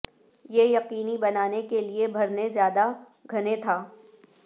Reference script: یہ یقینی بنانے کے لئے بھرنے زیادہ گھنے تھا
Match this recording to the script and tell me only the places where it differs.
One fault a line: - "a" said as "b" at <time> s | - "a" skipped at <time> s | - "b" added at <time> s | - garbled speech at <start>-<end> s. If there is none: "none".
none